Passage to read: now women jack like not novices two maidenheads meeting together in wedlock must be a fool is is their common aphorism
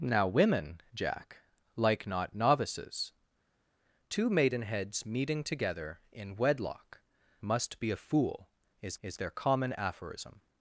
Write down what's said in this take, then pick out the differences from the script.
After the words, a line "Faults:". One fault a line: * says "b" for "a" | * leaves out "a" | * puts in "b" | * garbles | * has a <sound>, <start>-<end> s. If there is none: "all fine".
now women jack like not novices two maidenheads meeting together in wedlock must be a fool is is their common aphorism
Faults:
all fine